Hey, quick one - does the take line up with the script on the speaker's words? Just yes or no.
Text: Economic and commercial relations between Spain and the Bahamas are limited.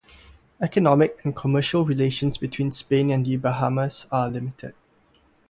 yes